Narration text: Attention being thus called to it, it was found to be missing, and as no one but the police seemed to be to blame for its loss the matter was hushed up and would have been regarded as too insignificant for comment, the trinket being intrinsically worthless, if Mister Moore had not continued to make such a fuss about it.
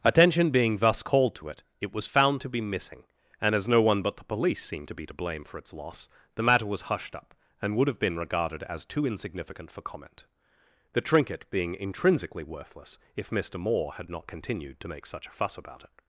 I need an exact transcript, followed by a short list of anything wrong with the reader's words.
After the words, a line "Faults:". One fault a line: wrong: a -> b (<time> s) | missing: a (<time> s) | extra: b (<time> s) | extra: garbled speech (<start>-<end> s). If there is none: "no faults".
Attention being thus called to it, it was found to be missing, and as no one but the police seemed to be to blame for its loss the matter was hushed up and would have been regarded as too insignificant for comment, the trinket being intrinsically worthless, if Mister Moore had not continued to make such a fuss about it.
Faults:
no faults